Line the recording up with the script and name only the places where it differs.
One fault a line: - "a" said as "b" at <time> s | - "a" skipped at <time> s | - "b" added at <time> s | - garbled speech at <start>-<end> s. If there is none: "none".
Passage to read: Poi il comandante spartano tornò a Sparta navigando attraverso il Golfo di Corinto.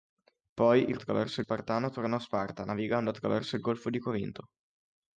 - "comandante" said as "attraverso" at 0.9 s